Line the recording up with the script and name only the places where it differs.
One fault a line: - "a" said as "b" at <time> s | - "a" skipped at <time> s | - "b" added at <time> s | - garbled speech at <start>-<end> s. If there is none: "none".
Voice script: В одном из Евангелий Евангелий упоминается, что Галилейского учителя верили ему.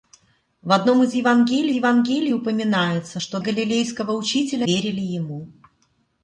none